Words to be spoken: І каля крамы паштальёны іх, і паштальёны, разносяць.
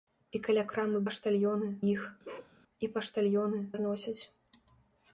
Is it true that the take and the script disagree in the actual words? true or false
false